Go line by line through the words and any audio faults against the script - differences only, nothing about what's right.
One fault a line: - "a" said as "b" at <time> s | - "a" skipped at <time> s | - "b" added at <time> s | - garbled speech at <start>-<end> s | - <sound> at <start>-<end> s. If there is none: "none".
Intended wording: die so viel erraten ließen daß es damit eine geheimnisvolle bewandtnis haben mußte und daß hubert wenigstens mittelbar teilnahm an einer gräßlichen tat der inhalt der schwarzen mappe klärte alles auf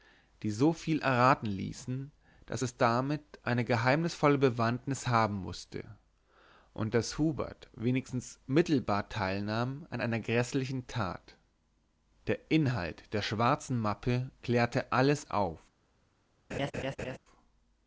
- laugh at 16.5-17.2 s